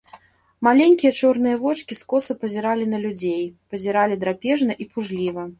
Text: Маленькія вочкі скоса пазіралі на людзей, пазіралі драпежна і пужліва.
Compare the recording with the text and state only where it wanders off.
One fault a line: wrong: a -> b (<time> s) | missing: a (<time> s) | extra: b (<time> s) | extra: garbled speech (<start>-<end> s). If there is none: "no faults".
extra: чорныя (1.2 s)